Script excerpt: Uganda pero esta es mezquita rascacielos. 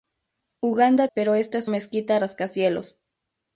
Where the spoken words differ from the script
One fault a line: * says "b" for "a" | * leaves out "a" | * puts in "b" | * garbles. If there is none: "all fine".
all fine